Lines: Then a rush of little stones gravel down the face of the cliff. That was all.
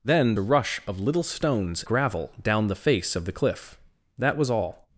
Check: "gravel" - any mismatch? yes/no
no